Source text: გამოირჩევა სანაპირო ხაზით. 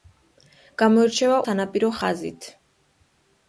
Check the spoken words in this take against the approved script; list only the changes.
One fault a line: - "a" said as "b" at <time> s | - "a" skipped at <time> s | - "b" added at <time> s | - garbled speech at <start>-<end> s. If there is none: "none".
none